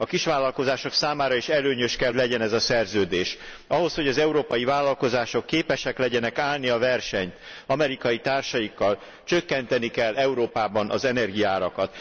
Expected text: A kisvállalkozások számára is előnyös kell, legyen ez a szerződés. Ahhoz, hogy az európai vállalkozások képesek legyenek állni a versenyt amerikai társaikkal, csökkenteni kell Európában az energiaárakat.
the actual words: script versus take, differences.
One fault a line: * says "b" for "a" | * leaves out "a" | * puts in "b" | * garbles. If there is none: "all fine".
all fine